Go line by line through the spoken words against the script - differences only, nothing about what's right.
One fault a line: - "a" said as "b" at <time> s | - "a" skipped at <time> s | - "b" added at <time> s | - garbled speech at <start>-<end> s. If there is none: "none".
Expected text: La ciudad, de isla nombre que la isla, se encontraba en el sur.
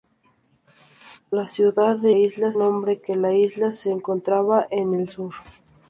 none